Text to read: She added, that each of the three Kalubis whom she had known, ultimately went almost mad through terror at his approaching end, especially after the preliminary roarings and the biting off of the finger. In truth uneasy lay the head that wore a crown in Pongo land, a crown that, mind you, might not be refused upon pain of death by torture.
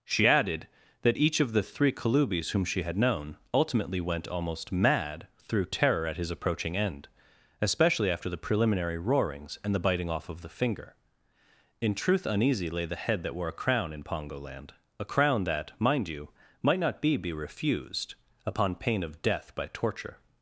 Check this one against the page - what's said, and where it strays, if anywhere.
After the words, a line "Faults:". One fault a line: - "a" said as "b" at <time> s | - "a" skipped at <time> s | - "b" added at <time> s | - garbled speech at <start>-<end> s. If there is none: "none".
She added, that each of the three Kalubis whom she had known, ultimately went almost mad through terror at his approaching end, especially after the preliminary roarings and the biting off of the finger. In truth uneasy lay the head that wore a crown in Pongo land, a crown that, mind you, might not be be refused upon pain of death by torture.
Faults:
- "be" added at 17.2 s